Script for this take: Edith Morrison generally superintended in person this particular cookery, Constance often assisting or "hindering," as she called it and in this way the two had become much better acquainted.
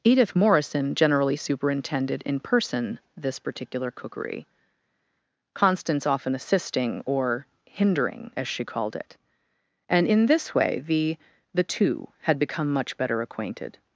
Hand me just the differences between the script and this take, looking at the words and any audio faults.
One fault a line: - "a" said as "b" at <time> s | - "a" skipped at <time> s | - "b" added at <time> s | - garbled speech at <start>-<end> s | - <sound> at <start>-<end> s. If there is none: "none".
- "the" added at 11.5 s